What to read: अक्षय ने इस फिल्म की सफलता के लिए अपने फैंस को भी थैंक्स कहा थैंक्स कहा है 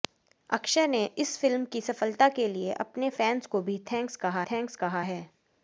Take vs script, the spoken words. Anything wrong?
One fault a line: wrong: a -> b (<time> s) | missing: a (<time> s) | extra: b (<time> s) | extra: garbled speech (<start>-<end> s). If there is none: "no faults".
no faults